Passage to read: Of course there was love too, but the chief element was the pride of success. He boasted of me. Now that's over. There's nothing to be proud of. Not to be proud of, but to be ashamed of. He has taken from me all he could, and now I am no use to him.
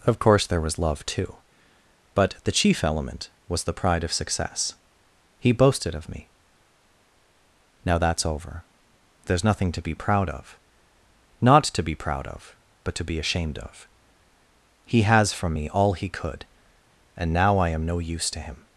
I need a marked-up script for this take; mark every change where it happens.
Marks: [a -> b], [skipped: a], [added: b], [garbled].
Of course there was love too, but the chief element was the pride of success. He boasted of me. Now that's over. There's nothing to be proud of. Not to be proud of, but to be ashamed of. He has [skipped: taken] from me all he could, and now I am no use to him.